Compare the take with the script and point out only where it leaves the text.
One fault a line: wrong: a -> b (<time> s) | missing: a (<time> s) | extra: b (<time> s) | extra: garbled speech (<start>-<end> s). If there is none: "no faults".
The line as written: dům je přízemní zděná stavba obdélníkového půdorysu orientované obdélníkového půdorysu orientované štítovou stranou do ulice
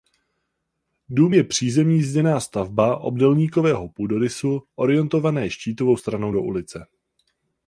missing: obdélníkového půdorysu orientované (5.5 s)